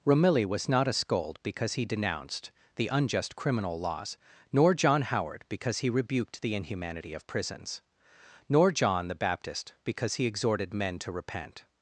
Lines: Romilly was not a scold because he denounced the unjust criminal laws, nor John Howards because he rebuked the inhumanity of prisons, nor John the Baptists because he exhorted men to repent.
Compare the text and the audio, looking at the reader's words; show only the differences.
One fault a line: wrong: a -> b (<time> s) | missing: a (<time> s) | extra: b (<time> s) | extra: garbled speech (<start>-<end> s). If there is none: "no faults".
wrong: Howards -> Howard (5.0 s)
wrong: Baptists -> Baptist (9.2 s)